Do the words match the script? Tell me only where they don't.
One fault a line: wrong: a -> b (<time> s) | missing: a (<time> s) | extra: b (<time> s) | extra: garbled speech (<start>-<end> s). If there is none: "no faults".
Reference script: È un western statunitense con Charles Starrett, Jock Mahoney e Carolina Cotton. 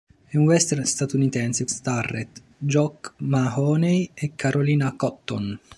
missing: con Charles (1.7 s)